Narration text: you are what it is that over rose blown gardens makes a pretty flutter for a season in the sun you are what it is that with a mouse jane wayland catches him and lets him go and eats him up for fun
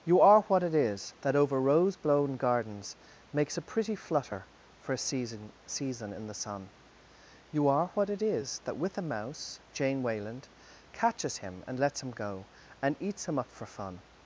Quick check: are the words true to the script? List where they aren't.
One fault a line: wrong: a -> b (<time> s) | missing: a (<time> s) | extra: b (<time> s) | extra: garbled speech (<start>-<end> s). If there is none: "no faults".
extra: season (5.7 s)